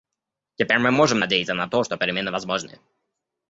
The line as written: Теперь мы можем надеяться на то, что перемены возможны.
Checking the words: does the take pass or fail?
pass